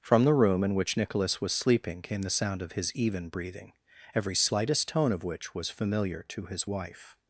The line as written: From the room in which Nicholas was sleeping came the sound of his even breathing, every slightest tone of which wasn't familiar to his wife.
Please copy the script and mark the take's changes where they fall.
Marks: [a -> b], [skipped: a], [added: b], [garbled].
From the room in which Nicholas was sleeping came the sound of his even breathing, every slightest tone of which [wasn't -> was] familiar to his wife.